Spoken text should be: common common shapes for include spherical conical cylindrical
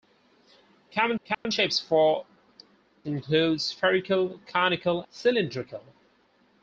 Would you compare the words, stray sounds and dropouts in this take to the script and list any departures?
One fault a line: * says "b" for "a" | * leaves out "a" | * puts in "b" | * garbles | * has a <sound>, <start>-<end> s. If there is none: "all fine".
* has a dropout, 1.3-1.5 s